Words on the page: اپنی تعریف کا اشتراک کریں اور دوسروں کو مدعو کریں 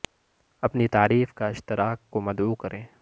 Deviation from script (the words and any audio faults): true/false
true